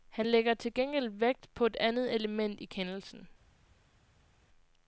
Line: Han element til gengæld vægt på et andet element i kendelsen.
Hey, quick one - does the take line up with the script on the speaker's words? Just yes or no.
no